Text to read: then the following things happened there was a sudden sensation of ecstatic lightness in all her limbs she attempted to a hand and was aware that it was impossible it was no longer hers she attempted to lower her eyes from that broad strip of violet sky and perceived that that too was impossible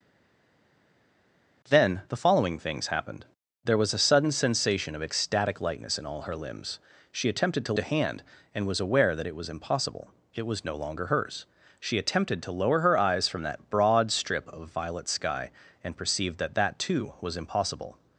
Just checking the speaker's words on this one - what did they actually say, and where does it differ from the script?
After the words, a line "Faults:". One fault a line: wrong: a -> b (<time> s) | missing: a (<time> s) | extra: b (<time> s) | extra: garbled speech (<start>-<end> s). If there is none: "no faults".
then the following things happened there was a sudden sensation of ecstatic lightness in all her limbs she attempted to a hand and was aware that it was impossible it was no longer hers she attempted to lower her eyes from that broad strip of violet sky and perceived that that too was impossible
Faults:
no faults